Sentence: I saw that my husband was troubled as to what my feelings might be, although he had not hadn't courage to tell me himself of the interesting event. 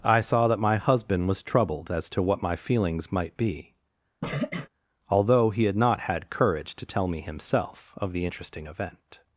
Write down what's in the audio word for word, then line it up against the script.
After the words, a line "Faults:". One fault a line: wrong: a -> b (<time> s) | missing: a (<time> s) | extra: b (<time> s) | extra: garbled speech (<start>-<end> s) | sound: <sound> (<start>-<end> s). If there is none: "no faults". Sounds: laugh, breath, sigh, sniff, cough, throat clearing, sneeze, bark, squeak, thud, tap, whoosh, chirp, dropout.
I saw that my husband was troubled as to what my feelings might be, although he had not had courage to tell me himself of the interesting event.
Faults:
sound: sniff (4.2-4.7 s)
wrong: hadn't -> had (6.0 s)